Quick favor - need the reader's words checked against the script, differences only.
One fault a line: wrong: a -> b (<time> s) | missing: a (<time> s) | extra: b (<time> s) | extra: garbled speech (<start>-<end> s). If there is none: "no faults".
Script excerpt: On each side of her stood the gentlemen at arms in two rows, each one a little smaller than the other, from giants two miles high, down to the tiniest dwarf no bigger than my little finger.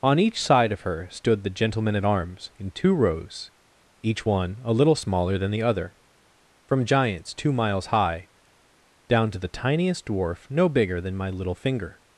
no faults